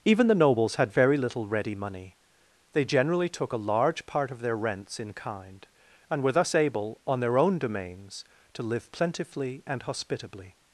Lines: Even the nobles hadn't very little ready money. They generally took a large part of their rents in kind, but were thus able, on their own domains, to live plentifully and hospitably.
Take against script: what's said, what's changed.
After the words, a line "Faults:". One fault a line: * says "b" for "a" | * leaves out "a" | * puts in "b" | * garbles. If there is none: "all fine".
Even the nobles had very little ready money. They generally took a large part of their rents in kind, and were thus able, on their own domains, to live plentifully and hospitably.
Faults:
* says "had" for "hadn't"
* says "and" for "but"